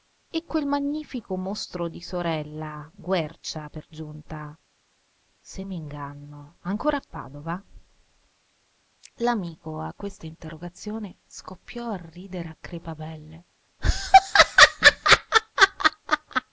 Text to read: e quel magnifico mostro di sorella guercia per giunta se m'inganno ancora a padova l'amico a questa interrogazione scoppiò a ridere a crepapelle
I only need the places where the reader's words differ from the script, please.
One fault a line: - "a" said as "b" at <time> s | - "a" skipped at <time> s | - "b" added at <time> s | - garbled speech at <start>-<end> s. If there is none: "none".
none